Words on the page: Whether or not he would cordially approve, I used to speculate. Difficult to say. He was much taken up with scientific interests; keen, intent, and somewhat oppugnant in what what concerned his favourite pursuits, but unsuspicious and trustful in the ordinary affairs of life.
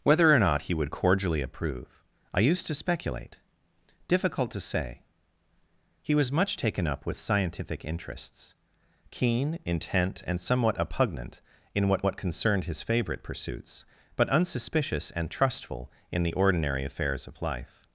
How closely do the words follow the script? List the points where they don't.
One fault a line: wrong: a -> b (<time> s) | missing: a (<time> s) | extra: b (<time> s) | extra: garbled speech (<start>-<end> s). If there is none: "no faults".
no faults